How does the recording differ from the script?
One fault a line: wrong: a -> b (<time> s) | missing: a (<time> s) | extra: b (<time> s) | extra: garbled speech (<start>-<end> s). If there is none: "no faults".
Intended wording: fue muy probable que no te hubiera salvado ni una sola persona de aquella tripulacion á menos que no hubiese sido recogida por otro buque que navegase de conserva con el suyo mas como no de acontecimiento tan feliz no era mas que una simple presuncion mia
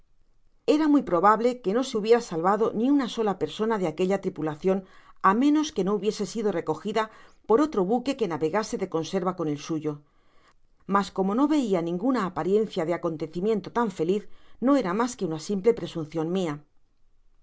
wrong: fue -> era (0.8 s)
wrong: te -> se (1.8 s)
extra: veia ninguna apariencia (11.6 s)